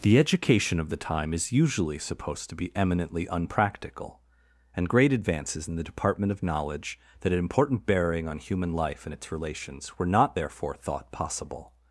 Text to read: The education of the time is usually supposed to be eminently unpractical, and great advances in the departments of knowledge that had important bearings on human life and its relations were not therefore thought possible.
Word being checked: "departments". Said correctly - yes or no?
no